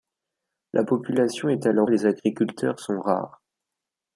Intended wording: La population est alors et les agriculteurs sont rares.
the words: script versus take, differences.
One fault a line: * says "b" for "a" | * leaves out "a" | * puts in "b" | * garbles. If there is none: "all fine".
all fine